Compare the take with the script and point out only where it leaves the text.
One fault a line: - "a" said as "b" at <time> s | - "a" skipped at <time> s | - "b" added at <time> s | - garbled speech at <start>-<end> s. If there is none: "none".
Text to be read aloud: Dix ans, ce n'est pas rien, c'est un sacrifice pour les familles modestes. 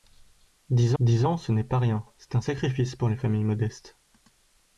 - "dix" added at 1.0 s